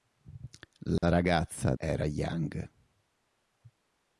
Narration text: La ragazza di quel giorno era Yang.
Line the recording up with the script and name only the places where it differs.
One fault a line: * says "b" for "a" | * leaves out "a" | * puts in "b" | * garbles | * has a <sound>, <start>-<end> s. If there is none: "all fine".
* has a dropout, 1.0-1.0 s
* leaves out "di quel giorno"